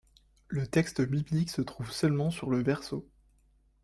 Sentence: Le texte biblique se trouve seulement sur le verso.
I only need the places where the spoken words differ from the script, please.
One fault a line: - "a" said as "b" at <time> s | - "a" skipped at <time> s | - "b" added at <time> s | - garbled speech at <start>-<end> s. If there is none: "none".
none